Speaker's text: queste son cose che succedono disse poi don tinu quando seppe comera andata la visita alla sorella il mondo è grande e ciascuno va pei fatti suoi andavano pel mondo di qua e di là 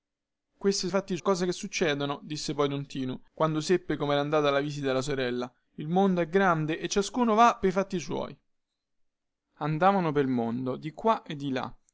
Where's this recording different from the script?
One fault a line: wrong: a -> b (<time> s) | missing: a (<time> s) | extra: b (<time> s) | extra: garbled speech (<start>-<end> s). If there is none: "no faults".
wrong: son -> fatti (0.9 s)